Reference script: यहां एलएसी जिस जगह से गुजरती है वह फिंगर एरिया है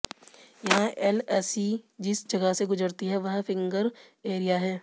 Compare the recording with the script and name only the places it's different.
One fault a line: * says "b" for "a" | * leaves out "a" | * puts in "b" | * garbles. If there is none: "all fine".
all fine